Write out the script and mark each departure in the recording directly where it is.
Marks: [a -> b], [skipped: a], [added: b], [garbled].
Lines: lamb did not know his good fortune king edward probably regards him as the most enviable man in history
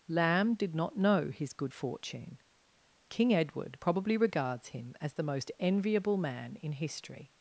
lamb did not know his good fortune king edward probably regards him as the most enviable man in history